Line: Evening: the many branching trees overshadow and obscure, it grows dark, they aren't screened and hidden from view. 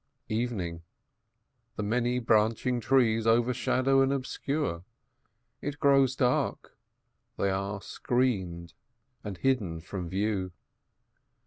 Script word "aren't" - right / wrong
wrong